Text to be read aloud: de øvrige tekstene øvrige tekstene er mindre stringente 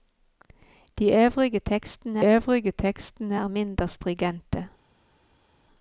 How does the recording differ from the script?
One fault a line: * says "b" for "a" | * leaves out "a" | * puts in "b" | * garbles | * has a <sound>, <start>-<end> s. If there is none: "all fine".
all fine